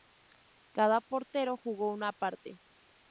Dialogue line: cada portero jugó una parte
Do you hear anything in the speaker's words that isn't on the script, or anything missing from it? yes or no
no